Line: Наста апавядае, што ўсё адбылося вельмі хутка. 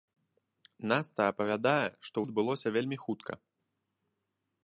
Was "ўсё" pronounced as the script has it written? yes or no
no